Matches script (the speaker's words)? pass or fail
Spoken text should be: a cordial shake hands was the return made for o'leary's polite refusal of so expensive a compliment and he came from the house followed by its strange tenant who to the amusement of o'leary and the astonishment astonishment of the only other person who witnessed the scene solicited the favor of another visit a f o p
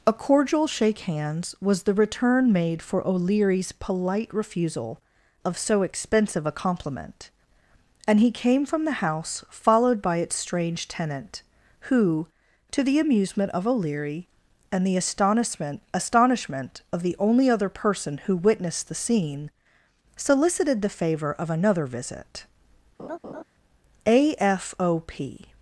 pass